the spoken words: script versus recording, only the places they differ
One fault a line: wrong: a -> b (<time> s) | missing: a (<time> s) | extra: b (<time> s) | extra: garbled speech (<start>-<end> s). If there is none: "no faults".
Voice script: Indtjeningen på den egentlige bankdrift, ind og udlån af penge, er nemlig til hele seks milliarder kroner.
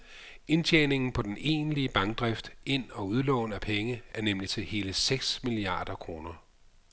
no faults